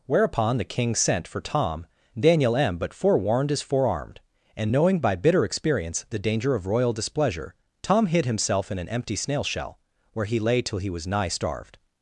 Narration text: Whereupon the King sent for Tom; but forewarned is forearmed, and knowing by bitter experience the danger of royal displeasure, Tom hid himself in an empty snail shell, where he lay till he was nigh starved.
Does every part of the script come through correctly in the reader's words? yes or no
no